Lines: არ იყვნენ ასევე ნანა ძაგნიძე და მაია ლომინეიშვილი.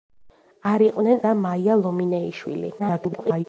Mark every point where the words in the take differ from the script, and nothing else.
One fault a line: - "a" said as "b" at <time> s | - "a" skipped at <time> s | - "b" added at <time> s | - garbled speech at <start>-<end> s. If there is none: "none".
- "ასევე ნანა ძაგნიძე" skipped at 1.2 s
- garbled speech at 2.8-3.5 s